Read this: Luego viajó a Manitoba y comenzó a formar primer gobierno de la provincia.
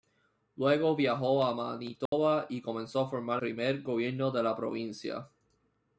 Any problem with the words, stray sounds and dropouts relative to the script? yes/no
yes